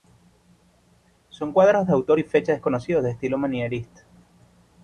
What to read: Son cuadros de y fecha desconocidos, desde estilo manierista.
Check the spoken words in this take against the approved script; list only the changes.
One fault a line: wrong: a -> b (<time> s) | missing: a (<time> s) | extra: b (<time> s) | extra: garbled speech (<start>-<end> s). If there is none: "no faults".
extra: autor (1.9 s)
wrong: desde -> de (3.0 s)